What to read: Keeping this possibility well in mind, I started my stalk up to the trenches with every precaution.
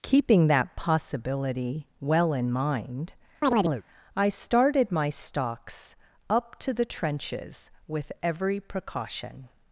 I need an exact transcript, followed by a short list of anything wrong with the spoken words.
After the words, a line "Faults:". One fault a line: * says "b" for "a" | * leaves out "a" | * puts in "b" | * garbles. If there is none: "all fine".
Keeping that possibility well in mind, I started my stalks up to the trenches with every precaution.
Faults:
* says "that" for "this"
* says "stalks" for "stalk"